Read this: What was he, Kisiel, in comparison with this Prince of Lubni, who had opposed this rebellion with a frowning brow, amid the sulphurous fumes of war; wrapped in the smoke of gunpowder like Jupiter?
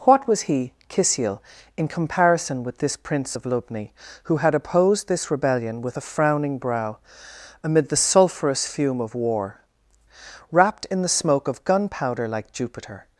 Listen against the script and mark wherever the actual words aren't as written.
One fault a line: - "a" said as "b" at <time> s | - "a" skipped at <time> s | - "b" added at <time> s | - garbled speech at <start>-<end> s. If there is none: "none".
- "fumes" said as "fume" at 8.7 s